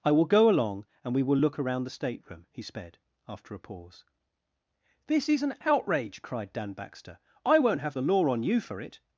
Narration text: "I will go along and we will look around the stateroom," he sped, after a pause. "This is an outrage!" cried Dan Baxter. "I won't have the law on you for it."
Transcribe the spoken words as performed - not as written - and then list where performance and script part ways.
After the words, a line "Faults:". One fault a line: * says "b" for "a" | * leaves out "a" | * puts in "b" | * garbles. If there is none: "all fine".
"I will go along and we will look around the stateroom," he sped, after a pause. "This is an outrage!" cried Dan Baxter. "I won't have the law on you for it."
Faults:
all fine